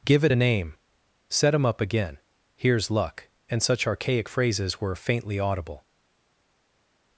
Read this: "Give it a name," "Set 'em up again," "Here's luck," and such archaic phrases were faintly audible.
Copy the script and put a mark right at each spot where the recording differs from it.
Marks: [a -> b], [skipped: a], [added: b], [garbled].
"Give it a name," "Set 'em up again," "Here's luck," and such archaic phrases were faintly audible.